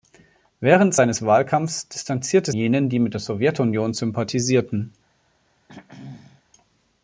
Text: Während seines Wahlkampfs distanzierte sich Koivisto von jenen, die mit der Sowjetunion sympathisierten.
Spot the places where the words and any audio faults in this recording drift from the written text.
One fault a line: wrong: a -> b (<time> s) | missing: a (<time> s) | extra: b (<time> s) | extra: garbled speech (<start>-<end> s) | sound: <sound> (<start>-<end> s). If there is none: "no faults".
missing: sich Koivisto von (2.5 s)
sound: throat clearing (5.7-6.4 s)